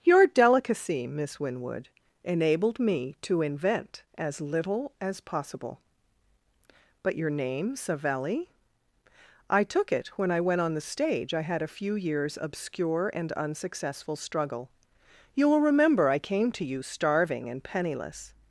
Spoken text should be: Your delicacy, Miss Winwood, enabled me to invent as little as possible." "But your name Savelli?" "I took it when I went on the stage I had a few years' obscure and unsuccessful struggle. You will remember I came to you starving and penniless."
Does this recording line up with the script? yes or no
yes